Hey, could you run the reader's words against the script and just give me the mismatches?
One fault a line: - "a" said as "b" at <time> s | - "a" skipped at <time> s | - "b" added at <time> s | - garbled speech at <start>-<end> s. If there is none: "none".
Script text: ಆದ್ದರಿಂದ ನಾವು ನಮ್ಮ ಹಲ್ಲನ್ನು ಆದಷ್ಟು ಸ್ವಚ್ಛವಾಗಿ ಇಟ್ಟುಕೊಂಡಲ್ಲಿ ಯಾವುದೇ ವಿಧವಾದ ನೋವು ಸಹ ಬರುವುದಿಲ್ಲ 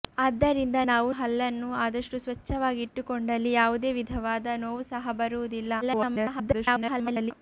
- "ನಮ್ಮ" skipped at 1.1 s
- garbled speech at 5.8-7.3 s